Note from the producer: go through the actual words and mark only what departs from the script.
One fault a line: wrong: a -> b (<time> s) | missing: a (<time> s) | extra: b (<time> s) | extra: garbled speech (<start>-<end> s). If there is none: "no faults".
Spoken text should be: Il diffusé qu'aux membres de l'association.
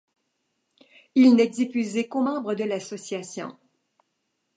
extra: n'est (1.4 s)